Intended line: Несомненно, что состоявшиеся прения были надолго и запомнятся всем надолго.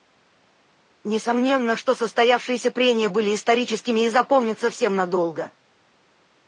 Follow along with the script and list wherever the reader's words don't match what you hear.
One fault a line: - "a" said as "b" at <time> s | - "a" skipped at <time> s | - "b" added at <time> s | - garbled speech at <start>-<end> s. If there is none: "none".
- "надолго" said as "историческими" at 3.3 s